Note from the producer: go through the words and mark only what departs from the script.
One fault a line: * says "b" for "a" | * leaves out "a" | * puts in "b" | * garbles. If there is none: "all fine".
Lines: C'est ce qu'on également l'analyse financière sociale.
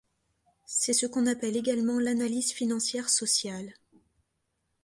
* puts in "appelle"